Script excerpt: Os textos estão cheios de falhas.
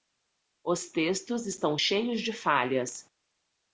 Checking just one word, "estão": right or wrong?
right